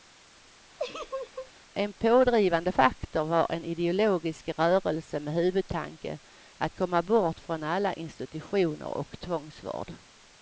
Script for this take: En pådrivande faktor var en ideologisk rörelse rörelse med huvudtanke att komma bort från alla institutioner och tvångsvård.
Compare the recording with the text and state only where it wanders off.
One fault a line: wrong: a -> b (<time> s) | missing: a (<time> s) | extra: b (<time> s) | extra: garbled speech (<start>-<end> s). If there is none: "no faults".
missing: rörelse (5.2 s)